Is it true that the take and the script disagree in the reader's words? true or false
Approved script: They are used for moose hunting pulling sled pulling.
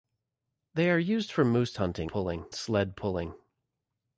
false